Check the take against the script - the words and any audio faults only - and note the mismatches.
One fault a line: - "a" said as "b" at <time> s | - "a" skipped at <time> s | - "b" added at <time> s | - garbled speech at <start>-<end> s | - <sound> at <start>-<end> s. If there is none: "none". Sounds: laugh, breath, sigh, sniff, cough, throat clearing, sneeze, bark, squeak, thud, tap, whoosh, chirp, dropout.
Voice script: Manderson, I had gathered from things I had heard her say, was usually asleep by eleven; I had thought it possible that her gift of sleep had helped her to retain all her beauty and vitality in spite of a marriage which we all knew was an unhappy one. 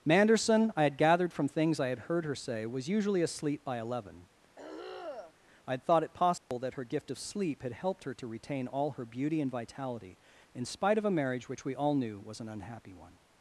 - throat clearing at 4.6-5.3 s
- dropout at 6.4-6.5 s